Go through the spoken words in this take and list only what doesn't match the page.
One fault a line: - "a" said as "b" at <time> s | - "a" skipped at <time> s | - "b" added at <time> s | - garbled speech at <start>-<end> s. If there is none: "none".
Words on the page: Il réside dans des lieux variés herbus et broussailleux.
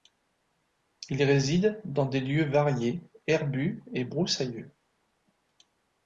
none